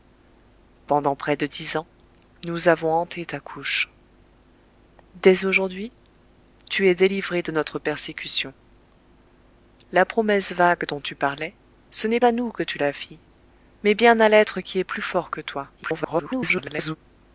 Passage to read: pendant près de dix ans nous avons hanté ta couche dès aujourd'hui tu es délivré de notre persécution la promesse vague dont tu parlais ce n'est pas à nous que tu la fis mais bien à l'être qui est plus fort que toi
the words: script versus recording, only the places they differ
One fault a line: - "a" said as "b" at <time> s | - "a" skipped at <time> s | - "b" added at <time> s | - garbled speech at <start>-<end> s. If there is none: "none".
- "pas" skipped at 12.2 s
- garbled speech at 15.8-17.0 s